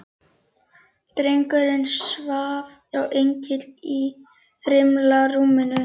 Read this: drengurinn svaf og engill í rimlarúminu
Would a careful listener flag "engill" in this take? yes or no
no